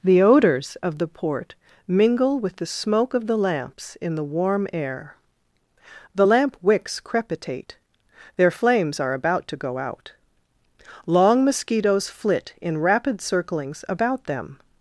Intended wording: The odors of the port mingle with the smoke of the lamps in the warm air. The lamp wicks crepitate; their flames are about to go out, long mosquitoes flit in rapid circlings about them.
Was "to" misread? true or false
false